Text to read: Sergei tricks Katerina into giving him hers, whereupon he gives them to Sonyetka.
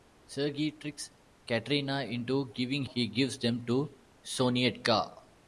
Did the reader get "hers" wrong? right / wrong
wrong